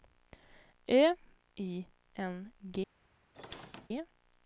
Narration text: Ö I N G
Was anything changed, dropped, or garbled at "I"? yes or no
no